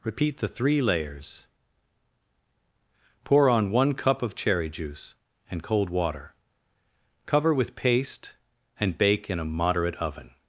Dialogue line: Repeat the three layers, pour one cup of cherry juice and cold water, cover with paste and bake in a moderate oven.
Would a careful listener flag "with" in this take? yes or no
no